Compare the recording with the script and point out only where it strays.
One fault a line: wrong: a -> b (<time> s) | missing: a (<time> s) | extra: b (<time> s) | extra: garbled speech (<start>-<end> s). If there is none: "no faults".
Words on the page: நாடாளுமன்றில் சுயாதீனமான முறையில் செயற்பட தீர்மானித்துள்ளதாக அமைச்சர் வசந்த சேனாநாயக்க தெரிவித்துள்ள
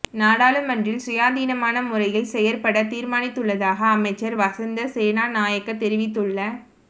no faults